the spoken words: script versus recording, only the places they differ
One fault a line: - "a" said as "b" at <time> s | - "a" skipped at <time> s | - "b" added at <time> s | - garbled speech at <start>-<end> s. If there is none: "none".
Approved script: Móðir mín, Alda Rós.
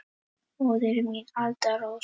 none